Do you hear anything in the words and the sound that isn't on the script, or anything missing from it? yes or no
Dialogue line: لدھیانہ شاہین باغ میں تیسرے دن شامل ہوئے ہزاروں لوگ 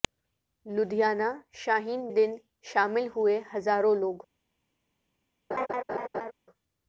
yes